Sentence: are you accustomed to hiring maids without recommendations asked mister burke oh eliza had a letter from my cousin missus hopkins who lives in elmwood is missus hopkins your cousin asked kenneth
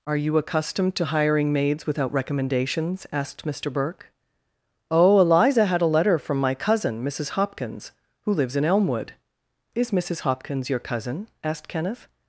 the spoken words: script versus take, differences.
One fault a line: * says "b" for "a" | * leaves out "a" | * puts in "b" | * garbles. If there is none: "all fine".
all fine